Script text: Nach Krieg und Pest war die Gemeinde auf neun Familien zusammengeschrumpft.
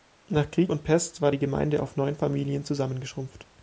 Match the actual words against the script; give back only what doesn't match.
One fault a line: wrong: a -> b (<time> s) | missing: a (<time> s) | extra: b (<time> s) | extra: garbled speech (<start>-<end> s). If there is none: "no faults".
no faults